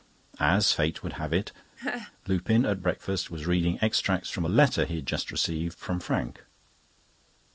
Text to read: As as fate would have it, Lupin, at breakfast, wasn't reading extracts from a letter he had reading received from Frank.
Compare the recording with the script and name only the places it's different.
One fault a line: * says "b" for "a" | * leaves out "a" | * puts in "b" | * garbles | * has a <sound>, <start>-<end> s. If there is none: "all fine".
* leaves out "as"
* has a laugh, 1.8-2.1 s
* says "was" for "wasn't"
* says "just" for "reading"